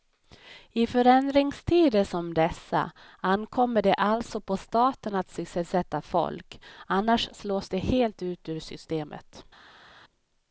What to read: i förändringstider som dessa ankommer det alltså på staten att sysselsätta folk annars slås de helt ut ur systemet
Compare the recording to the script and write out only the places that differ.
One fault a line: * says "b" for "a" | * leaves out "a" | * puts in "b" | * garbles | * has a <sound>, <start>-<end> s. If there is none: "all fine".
all fine